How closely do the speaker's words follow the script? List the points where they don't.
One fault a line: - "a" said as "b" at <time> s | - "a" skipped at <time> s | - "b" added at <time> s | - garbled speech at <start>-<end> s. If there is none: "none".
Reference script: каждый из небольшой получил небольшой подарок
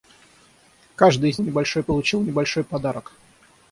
none